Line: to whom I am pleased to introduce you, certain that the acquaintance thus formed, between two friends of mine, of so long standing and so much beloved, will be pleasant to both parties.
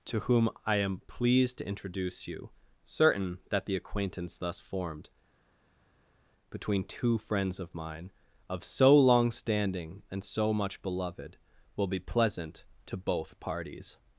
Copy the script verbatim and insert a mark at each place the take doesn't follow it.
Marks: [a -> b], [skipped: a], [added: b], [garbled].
to whom I am pleased to introduce you, certain that the acquaintance thus formed, between two friends of mine, of so long standing and so much beloved, will be pleasant to both parties.